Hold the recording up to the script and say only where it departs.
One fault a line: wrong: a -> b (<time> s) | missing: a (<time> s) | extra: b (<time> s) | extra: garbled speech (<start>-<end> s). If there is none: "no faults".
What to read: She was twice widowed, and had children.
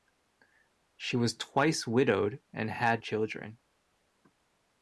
no faults